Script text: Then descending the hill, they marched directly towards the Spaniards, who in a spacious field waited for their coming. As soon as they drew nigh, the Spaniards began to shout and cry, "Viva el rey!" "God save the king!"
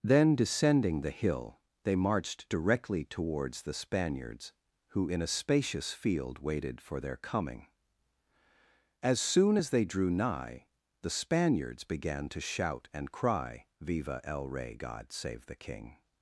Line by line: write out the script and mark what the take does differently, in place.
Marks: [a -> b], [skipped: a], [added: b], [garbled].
Then descending the hill, they marched directly towards the Spaniards, who in a spacious field waited for their coming. As soon as they drew nigh, the Spaniards began to shout and cry, "Viva el rey!" "God save the king!"